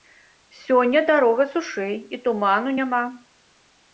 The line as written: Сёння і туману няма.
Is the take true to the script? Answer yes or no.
no